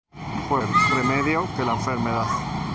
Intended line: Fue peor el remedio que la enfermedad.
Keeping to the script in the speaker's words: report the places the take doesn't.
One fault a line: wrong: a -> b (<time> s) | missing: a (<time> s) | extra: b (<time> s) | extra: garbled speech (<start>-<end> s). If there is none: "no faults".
missing: peor (0.6 s)